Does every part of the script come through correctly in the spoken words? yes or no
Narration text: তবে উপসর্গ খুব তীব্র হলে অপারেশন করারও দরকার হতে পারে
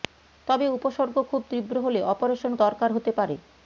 no